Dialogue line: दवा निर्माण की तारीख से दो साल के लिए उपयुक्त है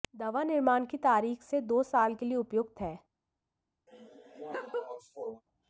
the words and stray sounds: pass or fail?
fail